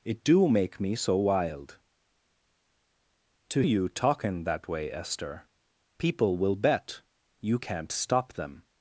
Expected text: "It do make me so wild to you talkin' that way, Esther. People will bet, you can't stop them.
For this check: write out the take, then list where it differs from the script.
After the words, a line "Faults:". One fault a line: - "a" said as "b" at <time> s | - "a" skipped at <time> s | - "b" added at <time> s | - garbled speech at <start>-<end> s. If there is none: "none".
"It do make me so wild to you talkin' that way, Esther. People will bet, you can't stop them.
Faults:
none